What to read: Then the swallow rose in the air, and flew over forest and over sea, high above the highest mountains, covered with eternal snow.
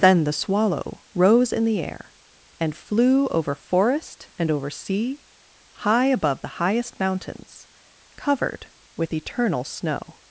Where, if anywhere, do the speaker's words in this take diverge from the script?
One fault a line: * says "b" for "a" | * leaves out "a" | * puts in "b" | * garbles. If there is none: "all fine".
all fine